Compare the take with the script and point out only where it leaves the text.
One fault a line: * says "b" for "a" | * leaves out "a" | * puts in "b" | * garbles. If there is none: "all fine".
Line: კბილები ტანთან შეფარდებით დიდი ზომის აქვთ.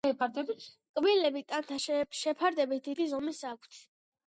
all fine